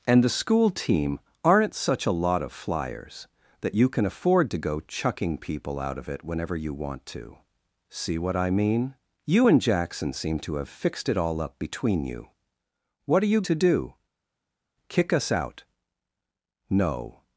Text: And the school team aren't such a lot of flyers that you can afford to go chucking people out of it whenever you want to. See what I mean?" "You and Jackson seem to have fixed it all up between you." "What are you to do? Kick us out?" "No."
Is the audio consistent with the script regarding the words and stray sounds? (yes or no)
yes